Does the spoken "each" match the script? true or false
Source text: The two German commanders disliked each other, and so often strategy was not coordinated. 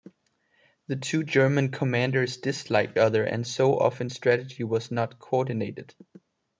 false